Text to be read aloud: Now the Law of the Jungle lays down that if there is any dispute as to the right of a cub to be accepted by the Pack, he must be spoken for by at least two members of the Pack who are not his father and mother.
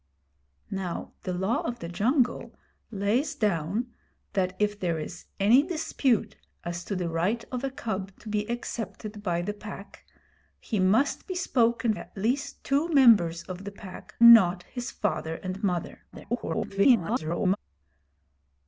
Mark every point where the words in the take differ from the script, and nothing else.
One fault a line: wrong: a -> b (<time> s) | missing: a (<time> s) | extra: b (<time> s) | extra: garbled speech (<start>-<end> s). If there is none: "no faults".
missing: for by (11.9 s)
missing: who are (14.1 s)
extra: garbled speech (16.1-17.6 s)